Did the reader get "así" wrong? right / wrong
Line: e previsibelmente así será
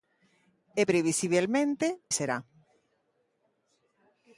wrong